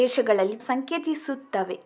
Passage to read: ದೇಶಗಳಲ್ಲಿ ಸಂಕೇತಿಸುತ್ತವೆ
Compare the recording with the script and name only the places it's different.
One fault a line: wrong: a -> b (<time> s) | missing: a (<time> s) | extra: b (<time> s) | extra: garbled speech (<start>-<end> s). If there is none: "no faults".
no faults